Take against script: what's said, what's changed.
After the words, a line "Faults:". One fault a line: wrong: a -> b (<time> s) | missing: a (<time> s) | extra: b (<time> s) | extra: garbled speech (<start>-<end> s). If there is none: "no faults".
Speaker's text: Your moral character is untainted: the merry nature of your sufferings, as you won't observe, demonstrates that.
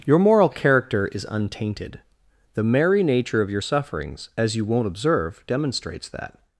Your moral character is untainted: the merry nature of your sufferings, as you won't observe, demonstrates that.
Faults:
no faults